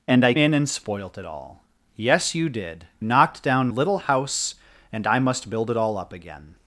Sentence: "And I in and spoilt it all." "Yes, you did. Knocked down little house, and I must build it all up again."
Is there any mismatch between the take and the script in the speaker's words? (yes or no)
no